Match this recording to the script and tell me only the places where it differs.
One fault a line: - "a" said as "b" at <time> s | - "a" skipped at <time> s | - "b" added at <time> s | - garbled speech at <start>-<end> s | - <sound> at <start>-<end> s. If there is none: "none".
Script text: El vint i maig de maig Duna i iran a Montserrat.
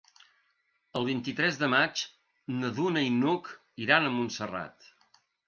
- "maig" said as "tres" at 1.4 s
- "na" added at 2.6 s
- "n'Hug" added at 3.2 s